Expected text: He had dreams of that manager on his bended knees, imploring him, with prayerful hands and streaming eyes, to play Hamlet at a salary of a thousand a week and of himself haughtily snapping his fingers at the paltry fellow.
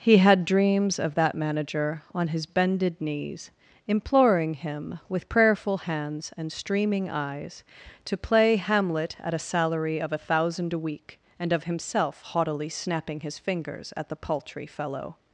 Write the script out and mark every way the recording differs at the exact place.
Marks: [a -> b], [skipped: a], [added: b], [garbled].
He had dreams of that manager on his bended knees, imploring him, with prayerful hands and streaming eyes, to play Hamlet at a salary of a thousand a week and of himself haughtily snapping his fingers at the paltry fellow.